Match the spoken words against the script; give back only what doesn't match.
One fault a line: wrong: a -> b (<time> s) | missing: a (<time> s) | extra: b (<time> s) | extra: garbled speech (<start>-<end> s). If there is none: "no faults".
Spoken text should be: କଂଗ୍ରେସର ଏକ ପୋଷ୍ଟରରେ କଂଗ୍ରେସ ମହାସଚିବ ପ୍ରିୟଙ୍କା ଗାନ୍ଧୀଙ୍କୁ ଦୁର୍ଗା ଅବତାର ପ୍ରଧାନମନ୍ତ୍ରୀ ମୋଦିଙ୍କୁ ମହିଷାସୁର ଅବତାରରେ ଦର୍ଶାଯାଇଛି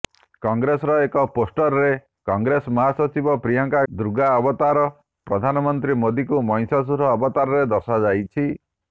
missing: ଗାନ୍ଧୀଙ୍କୁ (3.8 s)